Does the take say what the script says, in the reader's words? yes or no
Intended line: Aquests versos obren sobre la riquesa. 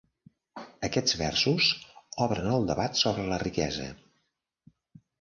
no